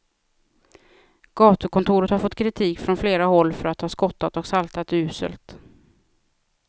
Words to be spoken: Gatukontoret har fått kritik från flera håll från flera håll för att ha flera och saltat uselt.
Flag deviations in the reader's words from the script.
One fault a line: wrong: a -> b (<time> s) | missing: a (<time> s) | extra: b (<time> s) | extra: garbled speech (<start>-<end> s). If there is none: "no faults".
missing: från flera håll (3.5 s)
wrong: flera -> skottat (3.9 s)